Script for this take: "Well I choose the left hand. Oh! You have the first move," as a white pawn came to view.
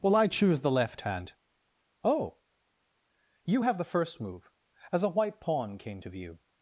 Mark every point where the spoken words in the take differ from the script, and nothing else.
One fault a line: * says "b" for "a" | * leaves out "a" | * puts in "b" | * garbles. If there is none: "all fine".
all fine